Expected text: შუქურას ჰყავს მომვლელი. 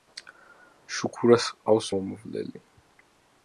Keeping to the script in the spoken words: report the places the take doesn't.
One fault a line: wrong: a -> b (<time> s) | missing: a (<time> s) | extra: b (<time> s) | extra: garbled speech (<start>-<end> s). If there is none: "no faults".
no faults